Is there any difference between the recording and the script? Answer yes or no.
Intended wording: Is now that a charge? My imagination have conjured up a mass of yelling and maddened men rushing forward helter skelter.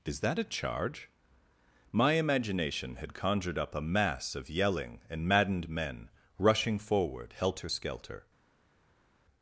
yes